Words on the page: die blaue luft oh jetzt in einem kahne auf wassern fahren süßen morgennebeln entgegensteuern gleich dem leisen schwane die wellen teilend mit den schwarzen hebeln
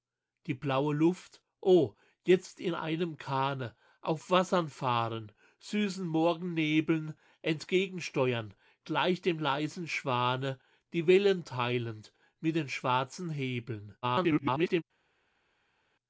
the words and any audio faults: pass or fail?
fail